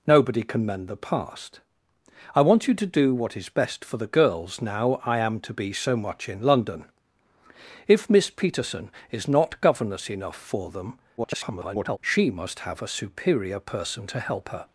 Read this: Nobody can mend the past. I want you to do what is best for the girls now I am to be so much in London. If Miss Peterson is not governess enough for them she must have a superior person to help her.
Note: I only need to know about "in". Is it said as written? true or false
true